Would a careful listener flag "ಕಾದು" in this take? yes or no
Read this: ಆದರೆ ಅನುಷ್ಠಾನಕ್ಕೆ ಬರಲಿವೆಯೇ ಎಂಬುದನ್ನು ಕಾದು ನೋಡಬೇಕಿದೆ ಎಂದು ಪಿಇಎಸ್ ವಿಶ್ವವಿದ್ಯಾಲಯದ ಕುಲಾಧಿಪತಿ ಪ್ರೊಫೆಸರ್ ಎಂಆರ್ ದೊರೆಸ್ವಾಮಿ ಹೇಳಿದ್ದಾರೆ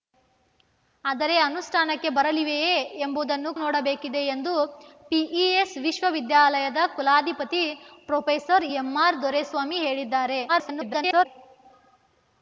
yes